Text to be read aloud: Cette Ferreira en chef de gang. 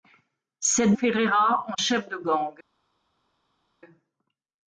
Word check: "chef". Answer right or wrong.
right